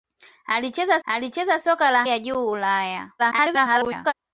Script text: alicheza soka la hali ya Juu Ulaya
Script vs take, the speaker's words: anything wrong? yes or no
yes